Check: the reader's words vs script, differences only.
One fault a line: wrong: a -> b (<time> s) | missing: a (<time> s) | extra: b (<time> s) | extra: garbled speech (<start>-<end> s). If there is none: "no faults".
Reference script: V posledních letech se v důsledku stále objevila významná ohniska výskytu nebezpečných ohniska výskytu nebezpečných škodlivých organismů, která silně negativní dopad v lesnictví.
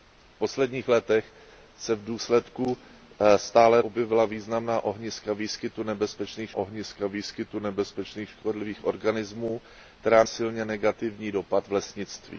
no faults